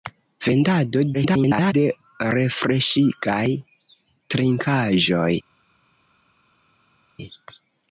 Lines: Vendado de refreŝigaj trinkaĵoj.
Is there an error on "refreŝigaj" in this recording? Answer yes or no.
no